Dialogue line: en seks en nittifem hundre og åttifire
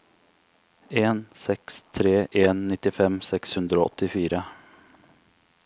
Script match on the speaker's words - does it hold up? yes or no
no